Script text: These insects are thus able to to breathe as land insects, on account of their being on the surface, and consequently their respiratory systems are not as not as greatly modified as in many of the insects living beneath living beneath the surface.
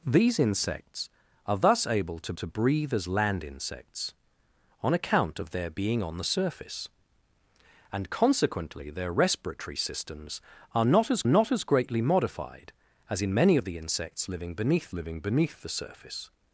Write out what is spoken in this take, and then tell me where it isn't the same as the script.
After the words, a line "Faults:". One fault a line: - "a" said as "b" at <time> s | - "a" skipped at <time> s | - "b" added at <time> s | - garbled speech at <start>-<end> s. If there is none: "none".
These insects are thus able to to breathe as land insects, on account of their being on the surface, and consequently their respiratory systems are not as not as greatly modified as in many of the insects living beneath living beneath the surface.
Faults:
none